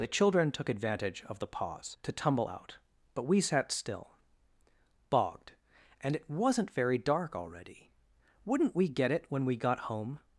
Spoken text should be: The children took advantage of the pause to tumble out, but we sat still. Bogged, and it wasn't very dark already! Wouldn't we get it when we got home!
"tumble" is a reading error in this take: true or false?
false